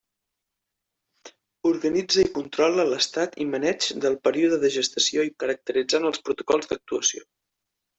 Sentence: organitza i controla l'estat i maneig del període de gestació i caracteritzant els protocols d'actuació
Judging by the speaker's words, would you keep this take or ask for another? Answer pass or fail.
pass